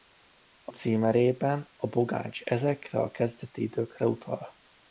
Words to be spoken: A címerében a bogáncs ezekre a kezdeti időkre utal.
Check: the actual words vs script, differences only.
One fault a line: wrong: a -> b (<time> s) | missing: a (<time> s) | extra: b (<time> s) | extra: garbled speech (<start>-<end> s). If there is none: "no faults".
no faults